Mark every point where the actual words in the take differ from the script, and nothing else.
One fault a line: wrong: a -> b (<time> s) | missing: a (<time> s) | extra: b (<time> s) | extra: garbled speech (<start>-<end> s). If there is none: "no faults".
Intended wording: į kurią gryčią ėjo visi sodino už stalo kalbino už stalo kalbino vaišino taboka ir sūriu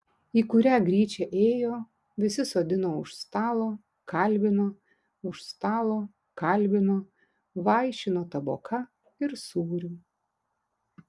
no faults